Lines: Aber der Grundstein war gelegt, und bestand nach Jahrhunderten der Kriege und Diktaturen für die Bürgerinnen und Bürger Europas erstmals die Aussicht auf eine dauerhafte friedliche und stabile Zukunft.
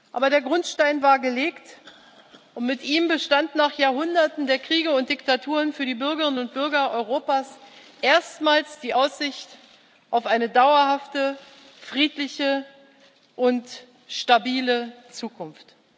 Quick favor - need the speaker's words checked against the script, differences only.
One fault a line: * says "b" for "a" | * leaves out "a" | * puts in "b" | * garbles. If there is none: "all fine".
* puts in "mit ihm"